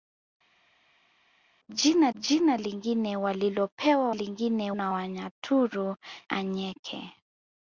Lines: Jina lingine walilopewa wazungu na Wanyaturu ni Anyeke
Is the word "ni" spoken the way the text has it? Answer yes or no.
no